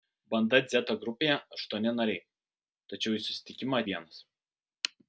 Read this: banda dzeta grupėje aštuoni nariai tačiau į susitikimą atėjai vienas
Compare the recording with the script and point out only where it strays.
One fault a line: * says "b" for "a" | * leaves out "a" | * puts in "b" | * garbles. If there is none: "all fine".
* leaves out "atėjai"